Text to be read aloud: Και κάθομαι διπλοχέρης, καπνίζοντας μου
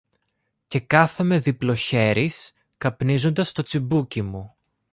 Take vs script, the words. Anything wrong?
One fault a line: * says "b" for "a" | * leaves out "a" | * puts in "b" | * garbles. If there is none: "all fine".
* puts in "το τσιμπούκι"